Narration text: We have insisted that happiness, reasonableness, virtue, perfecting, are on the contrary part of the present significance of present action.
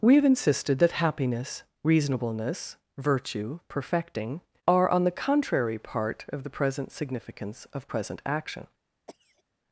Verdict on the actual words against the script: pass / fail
pass